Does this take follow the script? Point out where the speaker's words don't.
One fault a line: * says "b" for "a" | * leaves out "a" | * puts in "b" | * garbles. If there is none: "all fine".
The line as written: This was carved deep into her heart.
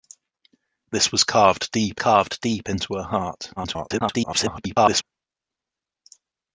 * puts in "carved deep"
* garbles